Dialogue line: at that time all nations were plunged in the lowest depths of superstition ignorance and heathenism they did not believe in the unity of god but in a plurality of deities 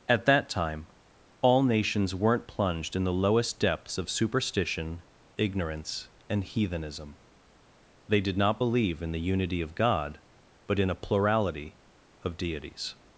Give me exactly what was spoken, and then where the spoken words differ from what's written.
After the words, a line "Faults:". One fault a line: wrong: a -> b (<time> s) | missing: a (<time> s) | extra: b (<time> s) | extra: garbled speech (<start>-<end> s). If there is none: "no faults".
at that time all nations weren't plunged in the lowest depths of superstition ignorance and heathenism they did not believe in the unity of god but in a plurality of deities
Faults:
wrong: were -> weren't (2.1 s)